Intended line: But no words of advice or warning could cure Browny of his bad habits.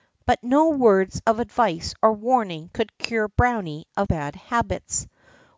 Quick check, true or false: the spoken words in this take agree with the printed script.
false